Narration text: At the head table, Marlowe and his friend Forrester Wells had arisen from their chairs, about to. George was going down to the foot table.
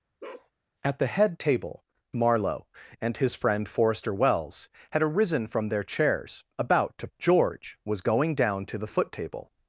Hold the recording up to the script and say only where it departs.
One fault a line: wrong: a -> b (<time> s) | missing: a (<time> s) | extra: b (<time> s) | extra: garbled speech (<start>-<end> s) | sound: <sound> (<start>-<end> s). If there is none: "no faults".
sound: bark (0.2-0.5 s)